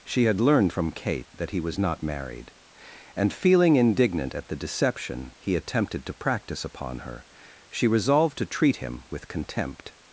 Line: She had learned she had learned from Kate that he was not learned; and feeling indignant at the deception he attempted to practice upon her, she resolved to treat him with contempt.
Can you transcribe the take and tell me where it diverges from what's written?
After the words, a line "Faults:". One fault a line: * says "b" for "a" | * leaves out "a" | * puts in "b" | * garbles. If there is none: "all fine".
She had learned from Kate that he was not married; and feeling indignant at the deception he attempted to practice upon her, she resolved to treat him with contempt.
Faults:
* leaves out "she had learned"
* says "married" for "learned"